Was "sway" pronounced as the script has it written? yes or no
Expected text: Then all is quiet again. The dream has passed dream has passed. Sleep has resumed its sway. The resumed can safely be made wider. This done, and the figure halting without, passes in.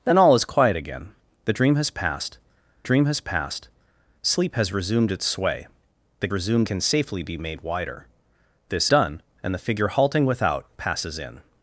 yes